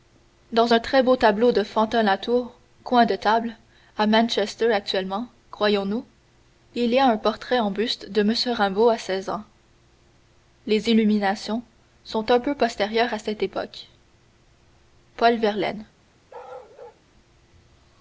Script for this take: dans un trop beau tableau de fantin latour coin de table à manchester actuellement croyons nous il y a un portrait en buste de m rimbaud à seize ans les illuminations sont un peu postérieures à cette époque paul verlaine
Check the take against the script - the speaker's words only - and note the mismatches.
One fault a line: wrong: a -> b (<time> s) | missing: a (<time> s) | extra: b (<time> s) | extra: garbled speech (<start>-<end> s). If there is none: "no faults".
wrong: trop -> très (0.8 s)